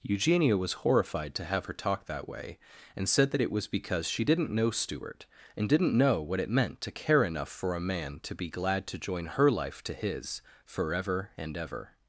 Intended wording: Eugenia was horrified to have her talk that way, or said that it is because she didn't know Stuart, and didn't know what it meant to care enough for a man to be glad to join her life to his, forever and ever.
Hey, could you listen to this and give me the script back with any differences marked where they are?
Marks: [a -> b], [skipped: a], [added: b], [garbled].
Eugenia was horrified to have her talk that way, [or -> and] said that it [is -> was] because she didn't know Stuart, and didn't know what it meant to care enough for a man to be glad to join her life to his, forever and ever.